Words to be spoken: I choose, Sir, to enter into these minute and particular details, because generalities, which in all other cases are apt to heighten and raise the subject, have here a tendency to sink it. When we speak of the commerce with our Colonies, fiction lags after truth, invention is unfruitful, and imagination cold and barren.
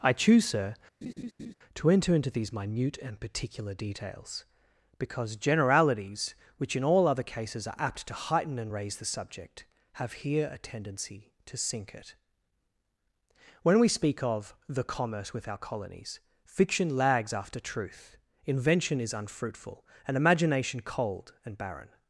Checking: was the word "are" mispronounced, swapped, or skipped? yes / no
no